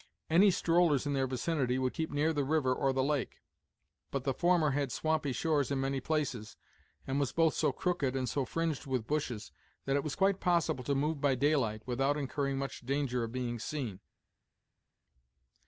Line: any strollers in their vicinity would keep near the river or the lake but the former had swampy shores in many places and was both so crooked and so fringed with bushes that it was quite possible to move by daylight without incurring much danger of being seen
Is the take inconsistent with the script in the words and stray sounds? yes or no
no